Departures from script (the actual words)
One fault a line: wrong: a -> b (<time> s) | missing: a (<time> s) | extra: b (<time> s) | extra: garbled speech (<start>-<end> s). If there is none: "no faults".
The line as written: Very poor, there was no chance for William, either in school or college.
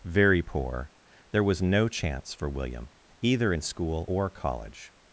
no faults